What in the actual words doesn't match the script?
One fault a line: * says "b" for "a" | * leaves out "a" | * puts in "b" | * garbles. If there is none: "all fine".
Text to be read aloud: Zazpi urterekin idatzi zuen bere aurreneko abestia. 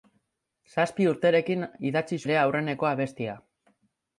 * leaves out "zuen"